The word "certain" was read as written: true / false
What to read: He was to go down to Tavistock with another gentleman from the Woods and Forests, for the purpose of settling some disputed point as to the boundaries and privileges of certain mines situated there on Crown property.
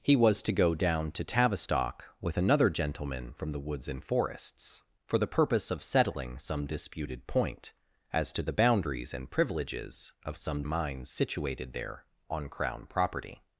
false